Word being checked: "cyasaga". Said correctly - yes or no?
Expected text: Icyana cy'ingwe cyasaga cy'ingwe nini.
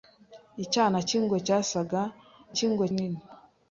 yes